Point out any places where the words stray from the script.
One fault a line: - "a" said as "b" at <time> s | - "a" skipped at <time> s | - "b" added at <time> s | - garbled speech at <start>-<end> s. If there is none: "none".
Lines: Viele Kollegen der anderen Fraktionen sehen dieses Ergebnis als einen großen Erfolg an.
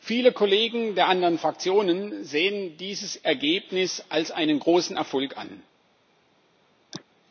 none